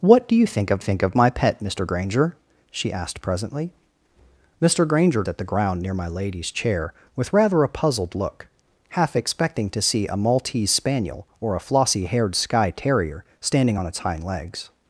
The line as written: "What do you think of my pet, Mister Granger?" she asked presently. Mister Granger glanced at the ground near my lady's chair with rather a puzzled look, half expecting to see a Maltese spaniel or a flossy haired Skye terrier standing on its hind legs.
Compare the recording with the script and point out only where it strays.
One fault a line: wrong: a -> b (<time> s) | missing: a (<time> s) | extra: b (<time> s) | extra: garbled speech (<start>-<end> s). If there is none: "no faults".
extra: think of (0.8 s)
missing: glanced (5.2 s)